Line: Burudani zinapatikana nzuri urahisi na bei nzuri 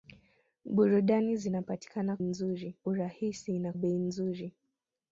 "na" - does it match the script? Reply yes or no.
yes